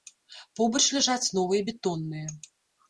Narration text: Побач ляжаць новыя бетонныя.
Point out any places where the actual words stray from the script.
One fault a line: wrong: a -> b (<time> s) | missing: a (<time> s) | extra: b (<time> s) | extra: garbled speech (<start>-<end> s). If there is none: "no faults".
no faults